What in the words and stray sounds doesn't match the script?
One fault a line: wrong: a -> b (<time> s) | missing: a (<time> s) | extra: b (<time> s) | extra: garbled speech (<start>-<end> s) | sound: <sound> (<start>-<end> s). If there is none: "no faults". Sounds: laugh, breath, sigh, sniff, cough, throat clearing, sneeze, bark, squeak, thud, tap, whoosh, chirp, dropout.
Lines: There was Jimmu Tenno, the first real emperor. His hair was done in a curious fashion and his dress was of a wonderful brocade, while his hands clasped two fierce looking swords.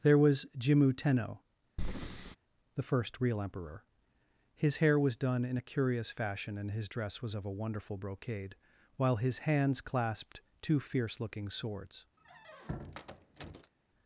sound: breath (1.8-2.4 s)
sound: squeak (12.2-13.7 s)